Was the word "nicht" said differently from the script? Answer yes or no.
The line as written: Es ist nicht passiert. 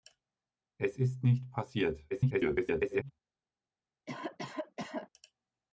no